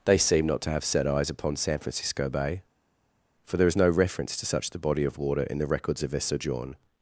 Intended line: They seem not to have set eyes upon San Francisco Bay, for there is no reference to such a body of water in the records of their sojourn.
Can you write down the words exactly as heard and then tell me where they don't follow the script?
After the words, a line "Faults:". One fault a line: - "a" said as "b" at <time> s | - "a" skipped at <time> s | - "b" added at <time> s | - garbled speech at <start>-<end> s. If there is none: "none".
They seem not to have set eyes upon San Francisco Bay, for there is no reference to such the body of water in the records of their sojourn.
Faults:
- "a" said as "the" at 4.7 s